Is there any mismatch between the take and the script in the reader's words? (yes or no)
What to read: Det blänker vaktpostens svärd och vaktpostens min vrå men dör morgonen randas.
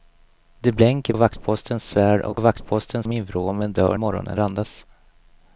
no